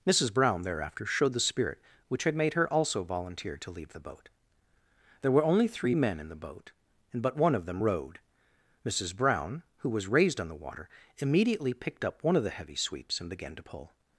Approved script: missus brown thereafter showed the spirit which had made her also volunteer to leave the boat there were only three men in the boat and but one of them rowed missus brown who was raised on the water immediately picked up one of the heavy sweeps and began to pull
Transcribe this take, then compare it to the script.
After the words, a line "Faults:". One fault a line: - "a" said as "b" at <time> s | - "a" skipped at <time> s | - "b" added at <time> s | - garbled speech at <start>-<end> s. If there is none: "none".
missus brown thereafter showed the spirit which had made her also volunteer to leave the boat there were only three men in the boat and but one of them rowed missus brown who was raised on the water immediately picked up one of the heavy sweeps and began to pull
Faults:
none